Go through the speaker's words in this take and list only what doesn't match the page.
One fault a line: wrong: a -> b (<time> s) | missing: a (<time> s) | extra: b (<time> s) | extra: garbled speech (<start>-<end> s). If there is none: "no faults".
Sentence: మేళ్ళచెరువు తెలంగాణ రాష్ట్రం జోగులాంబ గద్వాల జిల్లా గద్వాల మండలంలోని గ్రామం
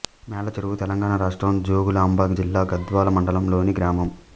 missing: గద్వాల (2.3 s)